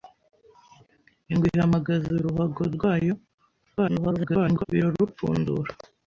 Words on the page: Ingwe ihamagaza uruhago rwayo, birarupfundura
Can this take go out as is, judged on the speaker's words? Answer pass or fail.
fail